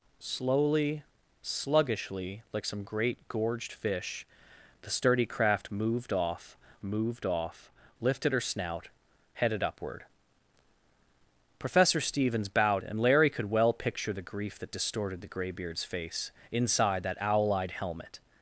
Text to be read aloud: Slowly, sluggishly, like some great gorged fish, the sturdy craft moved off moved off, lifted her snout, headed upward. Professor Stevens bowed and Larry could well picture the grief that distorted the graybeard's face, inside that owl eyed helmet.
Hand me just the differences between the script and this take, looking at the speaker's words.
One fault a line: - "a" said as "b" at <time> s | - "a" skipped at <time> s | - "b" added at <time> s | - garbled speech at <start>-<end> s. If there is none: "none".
none